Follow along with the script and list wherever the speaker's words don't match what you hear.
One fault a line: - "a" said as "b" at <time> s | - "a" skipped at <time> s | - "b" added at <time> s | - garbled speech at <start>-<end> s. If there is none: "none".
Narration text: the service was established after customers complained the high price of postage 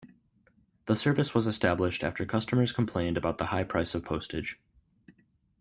- "about" added at 3.2 s